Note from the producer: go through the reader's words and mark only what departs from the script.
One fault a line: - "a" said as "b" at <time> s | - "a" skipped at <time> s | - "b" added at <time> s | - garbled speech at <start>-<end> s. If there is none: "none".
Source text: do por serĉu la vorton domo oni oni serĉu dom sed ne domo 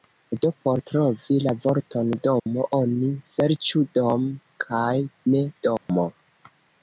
- "serĉu" said as "trovi" at 0.9 s
- "oni" skipped at 3.1 s
- "sed" said as "kaj" at 4.7 s